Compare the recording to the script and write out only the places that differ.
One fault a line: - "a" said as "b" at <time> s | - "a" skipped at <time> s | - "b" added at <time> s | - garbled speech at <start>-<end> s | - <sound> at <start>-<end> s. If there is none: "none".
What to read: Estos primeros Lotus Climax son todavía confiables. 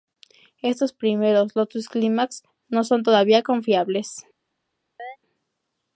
- "no" added at 2.7 s
- chirp at 5.0-5.2 s